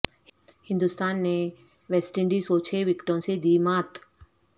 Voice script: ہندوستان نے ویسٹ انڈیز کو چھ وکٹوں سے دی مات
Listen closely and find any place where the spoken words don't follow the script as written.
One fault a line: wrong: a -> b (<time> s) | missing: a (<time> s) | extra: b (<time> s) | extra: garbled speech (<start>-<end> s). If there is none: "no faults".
no faults